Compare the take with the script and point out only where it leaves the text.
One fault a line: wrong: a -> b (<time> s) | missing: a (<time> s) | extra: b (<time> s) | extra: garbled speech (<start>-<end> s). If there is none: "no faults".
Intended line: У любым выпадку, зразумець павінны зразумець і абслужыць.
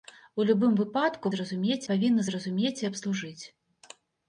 no faults